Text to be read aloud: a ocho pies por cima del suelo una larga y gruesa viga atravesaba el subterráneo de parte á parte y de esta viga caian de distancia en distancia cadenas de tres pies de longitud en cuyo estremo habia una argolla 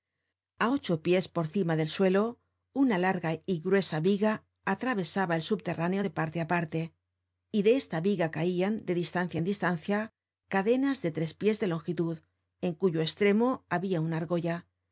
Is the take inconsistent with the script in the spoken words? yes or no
no